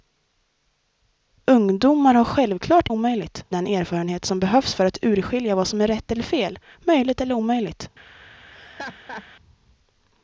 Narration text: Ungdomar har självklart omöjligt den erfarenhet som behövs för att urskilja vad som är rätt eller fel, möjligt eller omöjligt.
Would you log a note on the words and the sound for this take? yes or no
yes